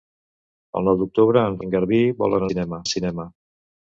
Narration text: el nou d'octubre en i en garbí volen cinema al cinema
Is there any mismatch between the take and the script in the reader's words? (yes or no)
no